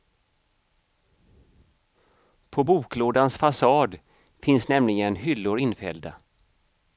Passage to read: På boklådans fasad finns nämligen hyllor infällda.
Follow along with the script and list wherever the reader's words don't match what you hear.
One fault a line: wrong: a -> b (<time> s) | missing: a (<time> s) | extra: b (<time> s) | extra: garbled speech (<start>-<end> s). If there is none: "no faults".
no faults